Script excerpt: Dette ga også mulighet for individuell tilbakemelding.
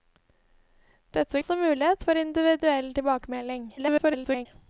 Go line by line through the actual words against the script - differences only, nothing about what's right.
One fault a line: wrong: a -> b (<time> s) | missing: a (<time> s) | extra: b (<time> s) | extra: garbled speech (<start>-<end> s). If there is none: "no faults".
missing: ga (1.4 s)
extra: garbled speech (3.8-4.5 s)